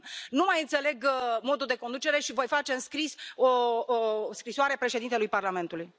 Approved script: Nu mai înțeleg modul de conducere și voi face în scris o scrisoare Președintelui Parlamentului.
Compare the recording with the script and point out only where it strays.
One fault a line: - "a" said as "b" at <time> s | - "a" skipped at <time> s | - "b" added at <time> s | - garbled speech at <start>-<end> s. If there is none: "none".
none